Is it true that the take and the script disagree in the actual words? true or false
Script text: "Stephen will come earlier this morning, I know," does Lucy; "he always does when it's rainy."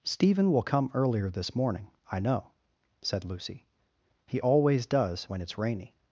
true